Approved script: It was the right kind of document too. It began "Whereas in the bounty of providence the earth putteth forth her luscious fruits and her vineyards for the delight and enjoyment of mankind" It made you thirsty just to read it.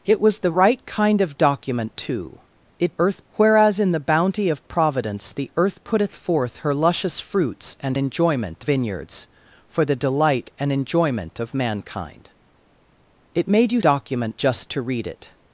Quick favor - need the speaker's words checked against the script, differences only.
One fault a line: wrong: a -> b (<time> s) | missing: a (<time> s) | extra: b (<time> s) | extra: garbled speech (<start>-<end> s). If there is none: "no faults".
wrong: began -> earth (3.0 s)
wrong: her -> enjoyment (8.0 s)
wrong: thirsty -> document (13.8 s)